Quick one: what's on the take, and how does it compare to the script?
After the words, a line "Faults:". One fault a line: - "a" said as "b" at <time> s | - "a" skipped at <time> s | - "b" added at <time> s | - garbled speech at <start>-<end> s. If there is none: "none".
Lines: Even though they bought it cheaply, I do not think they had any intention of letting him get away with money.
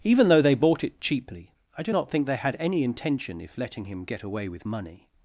Even though they bought it cheaply, I do not think they had any intention if letting him get away with money.
Faults:
- "of" said as "if" at 3.4 s